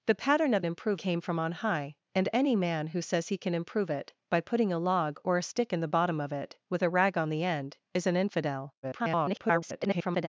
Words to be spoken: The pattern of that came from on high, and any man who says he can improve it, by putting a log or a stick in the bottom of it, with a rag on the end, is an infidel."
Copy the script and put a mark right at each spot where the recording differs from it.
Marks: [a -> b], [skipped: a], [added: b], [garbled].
The pattern of [that -> improve] came from on high, and any man who says he can improve it, by putting a log or a stick in the bottom of it, with a rag on the end, is an infidel." [garbled]